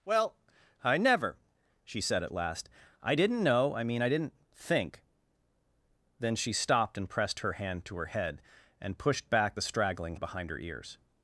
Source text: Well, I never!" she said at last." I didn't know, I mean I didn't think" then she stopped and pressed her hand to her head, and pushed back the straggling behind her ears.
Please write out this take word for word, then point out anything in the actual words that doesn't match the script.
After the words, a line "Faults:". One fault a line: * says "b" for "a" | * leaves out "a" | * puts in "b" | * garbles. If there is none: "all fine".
Well, I never!" she said at last." I didn't know, I mean I didn't think" then she stopped and pressed her hand to her head, and pushed back the straggling behind her ears.
Faults:
all fine